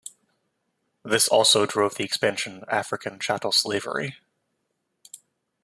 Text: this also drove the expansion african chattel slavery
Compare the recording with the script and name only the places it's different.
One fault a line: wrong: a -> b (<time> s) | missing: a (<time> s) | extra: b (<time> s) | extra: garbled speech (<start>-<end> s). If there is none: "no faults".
no faults